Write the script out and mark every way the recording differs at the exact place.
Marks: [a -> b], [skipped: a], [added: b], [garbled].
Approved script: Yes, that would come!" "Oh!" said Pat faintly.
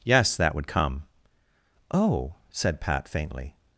Yes, that would come!" "Oh!" said Pat faintly.